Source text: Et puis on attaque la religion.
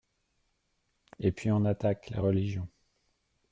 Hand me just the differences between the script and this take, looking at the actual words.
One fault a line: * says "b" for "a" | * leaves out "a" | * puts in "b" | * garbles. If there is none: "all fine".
all fine